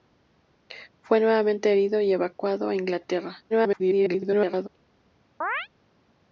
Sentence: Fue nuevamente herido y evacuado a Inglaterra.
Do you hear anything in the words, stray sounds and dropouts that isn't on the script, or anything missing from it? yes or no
yes